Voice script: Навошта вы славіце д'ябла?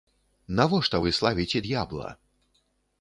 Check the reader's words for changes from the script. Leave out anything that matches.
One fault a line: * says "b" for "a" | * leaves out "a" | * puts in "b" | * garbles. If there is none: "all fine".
all fine